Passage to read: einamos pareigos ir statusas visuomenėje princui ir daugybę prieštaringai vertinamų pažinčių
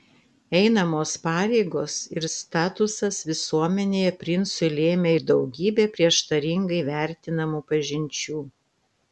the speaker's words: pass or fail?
fail